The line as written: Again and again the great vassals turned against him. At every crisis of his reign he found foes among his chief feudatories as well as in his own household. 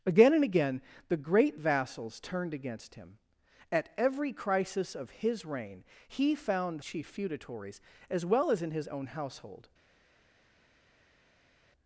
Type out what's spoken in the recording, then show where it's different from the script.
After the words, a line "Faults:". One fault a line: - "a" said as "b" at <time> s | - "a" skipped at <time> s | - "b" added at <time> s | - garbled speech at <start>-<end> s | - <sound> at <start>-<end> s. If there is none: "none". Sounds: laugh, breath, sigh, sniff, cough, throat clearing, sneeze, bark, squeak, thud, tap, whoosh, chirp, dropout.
Again and again the great vassals turned against him. At every crisis of his reign he found chief feudatories as well as in his own household.
Faults:
- "foes among his" skipped at 6.8 s